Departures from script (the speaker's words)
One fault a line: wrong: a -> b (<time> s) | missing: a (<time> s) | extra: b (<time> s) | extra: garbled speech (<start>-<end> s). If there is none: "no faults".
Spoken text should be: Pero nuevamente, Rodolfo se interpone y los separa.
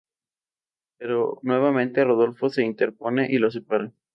no faults